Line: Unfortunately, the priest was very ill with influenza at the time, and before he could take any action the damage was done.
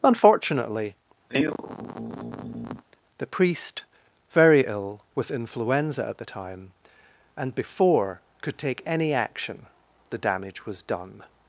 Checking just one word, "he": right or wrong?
wrong